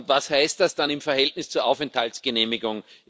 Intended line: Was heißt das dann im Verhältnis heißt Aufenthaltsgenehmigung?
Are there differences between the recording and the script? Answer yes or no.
yes